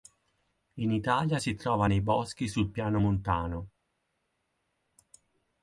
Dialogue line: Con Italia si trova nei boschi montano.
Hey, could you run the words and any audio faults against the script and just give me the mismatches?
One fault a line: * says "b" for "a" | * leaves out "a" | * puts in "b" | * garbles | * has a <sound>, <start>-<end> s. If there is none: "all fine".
* says "In" for "Con"
* puts in "sul Piano"